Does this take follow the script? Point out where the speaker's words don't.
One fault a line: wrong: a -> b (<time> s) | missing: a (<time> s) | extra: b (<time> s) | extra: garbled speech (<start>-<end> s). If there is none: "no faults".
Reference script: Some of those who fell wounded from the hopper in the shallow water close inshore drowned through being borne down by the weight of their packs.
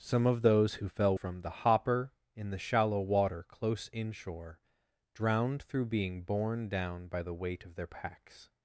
missing: wounded (1.1 s)